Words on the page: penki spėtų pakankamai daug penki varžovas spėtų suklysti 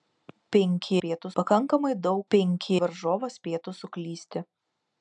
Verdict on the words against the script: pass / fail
pass